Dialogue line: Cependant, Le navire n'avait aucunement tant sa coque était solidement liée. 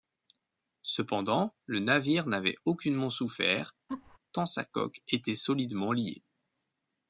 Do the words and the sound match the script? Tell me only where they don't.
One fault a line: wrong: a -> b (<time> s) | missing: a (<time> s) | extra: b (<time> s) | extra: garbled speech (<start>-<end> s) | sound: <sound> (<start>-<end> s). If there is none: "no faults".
extra: souffert (3.1 s)
sound: laugh (3.9-4.2 s)